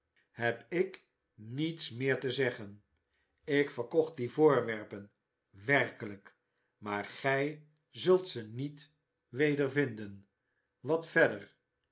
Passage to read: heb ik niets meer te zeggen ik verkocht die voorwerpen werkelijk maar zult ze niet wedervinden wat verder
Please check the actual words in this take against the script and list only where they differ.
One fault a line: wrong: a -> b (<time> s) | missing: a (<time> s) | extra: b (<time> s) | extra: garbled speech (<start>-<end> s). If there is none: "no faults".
extra: gij (7.0 s)